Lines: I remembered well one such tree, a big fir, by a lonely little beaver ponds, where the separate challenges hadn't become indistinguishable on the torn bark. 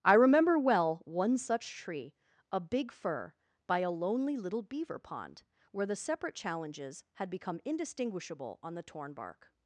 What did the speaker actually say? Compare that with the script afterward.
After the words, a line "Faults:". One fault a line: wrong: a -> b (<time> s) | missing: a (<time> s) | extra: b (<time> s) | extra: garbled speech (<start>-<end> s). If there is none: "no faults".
I remember well one such tree, a big fir, by a lonely little beaver pond, where the separate challenges had become indistinguishable on the torn bark.
Faults:
wrong: remembered -> remember (0.1 s)
wrong: ponds -> pond (5.0 s)
wrong: hadn't -> had (7.1 s)